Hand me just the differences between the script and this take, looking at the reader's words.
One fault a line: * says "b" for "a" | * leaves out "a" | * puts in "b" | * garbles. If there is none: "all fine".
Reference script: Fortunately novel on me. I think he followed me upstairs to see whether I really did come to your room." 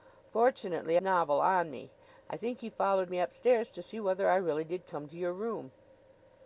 all fine